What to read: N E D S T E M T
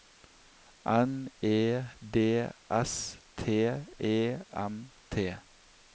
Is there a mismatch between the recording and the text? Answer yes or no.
no